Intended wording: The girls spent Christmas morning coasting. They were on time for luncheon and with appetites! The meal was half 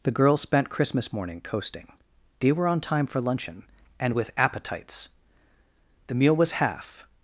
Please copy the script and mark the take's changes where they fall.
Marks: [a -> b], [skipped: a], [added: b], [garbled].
The girls spent Christmas morning coasting. They were on time for luncheon and with appetites! The meal was half